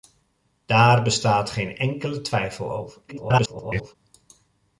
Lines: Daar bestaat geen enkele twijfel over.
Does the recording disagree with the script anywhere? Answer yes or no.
yes